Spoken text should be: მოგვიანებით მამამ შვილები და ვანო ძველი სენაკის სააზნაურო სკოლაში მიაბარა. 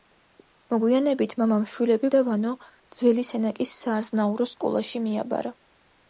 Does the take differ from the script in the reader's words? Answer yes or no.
no